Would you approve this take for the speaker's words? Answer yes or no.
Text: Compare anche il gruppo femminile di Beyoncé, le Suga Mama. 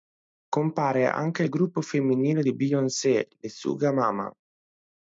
yes